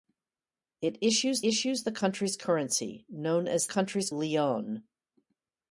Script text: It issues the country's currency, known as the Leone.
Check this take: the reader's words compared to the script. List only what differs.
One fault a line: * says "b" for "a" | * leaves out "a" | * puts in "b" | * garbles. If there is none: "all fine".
* puts in "issues"
* says "country's" for "the"